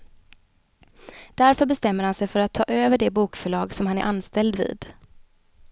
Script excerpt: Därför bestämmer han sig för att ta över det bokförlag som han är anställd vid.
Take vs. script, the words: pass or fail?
pass